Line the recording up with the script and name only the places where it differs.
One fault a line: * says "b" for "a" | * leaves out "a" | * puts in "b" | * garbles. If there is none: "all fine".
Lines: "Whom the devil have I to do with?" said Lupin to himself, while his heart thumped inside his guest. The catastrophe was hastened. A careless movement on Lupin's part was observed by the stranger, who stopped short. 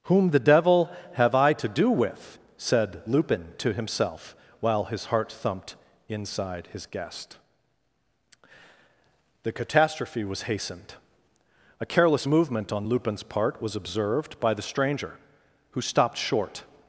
all fine